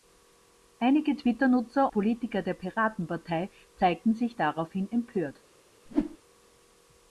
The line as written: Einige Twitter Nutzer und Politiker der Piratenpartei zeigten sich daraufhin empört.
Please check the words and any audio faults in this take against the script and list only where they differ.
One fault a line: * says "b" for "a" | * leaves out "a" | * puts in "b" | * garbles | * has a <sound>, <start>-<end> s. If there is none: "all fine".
* leaves out "und"
* has a whoosh, 5.9-6.2 s